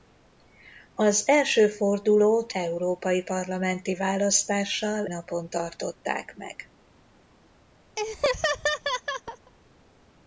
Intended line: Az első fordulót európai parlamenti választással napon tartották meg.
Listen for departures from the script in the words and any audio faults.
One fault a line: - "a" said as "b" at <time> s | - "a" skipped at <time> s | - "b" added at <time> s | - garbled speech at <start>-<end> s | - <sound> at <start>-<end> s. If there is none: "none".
- laugh at 8.0-9.5 s